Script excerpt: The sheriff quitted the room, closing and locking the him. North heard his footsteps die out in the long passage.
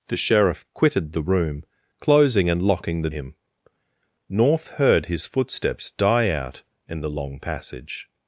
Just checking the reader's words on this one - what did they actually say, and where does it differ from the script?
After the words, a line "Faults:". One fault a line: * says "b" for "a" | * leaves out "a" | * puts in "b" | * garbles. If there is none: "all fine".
The sheriff quitted the room, closing and locking the him. North heard his footsteps die out in the long passage.
Faults:
all fine